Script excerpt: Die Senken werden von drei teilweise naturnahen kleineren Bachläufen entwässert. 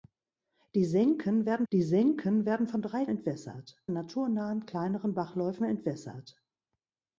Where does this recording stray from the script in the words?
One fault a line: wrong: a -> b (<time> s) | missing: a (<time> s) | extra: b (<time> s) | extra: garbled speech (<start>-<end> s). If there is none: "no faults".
extra: die Senken werden (1.7 s)
wrong: teilweise -> entwässert (3.1 s)